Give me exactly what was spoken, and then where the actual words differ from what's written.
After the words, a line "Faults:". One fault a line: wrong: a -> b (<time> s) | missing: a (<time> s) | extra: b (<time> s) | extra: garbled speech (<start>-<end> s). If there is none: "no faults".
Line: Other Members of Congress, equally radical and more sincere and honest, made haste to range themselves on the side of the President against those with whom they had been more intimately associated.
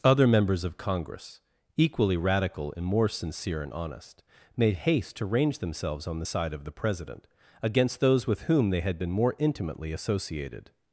Other Members of Congress, equally radical and more sincere and honest, made haste to range themselves on the side of the President against those with whom they had been more intimately associated.
Faults:
no faults